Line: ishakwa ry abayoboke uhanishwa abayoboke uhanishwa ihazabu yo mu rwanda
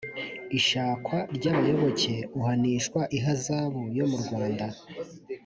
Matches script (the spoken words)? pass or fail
fail